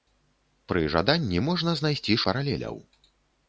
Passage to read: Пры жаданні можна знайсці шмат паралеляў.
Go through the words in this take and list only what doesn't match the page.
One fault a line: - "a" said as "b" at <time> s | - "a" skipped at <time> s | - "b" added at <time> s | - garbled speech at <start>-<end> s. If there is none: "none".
- "шмат" skipped at 2.2 s